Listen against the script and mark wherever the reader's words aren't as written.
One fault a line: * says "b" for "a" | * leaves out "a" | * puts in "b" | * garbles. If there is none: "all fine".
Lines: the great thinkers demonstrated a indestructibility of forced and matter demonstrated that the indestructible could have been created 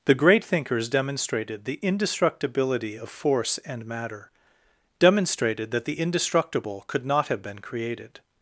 * says "the" for "a"
* says "force" for "forced"
* puts in "not"